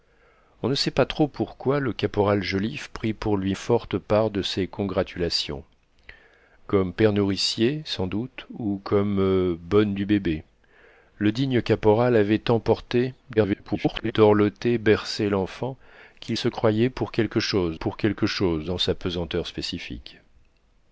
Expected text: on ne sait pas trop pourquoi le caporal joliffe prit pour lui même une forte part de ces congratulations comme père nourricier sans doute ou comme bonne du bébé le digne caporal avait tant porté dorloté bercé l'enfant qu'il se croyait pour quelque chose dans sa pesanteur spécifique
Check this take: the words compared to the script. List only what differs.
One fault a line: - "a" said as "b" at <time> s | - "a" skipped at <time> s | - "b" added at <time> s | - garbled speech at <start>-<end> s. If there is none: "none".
- "même une" skipped at 3.5 s
- garbled speech at 13.4-14.1 s
- "pour quelque chose" added at 17.7 s